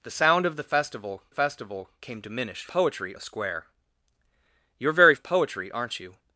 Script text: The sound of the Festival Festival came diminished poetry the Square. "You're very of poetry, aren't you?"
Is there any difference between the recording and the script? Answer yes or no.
no